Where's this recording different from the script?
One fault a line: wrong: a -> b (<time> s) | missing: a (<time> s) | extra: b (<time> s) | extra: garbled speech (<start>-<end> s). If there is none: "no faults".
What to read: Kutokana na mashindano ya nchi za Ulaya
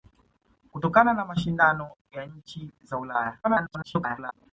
extra: garbled speech (3.4-4.3 s)